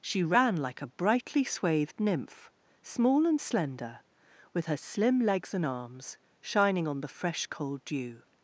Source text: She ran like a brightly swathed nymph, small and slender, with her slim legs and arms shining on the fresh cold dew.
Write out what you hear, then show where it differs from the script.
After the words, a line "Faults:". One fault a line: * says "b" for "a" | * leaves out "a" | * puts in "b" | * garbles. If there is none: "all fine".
She ran like a brightly swathed nymph, small and slender, with her slim legs and arms shining on the fresh cold dew.
Faults:
all fine